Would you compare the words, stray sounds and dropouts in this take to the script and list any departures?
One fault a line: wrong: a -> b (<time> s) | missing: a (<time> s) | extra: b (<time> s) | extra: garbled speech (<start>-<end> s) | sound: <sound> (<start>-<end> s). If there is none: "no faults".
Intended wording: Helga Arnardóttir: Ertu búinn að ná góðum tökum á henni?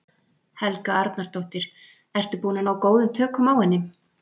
no faults